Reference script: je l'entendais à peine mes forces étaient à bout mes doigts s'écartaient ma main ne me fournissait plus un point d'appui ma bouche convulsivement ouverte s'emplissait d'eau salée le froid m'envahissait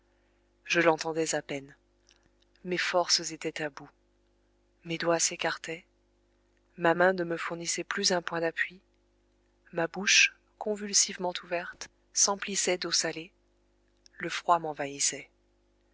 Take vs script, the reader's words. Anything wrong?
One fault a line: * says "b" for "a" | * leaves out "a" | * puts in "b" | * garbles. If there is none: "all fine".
all fine